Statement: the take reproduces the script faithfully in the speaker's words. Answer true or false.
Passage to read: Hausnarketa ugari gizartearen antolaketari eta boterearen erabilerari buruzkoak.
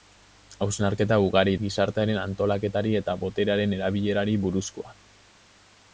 true